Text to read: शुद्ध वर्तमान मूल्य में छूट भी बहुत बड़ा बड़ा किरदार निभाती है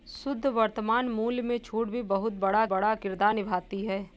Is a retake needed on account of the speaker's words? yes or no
no